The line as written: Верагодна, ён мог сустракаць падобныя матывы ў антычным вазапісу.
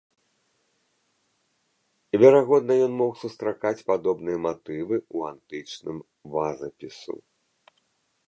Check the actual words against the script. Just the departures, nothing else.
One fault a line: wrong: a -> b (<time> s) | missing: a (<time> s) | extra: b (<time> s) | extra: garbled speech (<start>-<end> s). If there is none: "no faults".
no faults